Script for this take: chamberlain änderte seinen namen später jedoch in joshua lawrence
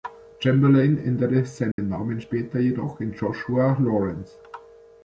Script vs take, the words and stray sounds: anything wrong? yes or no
yes